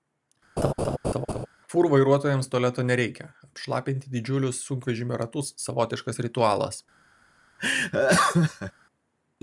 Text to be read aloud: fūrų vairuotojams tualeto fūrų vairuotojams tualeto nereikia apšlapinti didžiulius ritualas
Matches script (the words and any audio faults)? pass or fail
fail